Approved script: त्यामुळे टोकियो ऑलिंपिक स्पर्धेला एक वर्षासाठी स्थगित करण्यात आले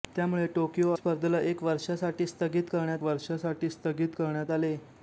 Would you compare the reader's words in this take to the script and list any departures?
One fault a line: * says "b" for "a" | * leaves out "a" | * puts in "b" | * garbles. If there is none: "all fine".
* leaves out "ऑलिंपिक"
* puts in "वर्षासाठी स्थगित करण्यात"